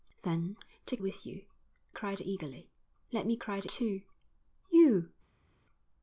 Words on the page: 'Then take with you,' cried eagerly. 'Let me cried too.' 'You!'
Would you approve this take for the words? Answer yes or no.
yes